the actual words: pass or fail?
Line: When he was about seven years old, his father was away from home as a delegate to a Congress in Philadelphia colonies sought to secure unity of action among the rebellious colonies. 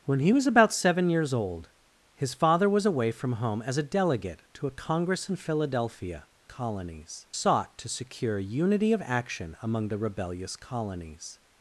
pass